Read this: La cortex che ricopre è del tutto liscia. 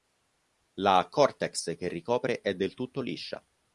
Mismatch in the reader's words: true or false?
false